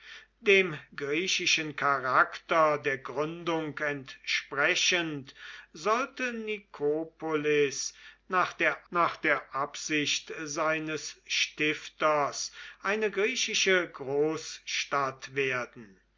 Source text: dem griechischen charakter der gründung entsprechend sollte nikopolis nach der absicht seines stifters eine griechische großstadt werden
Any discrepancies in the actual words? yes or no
yes